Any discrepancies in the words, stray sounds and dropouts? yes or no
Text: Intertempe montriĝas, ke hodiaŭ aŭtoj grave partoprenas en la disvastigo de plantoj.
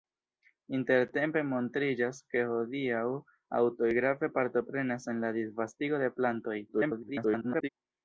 yes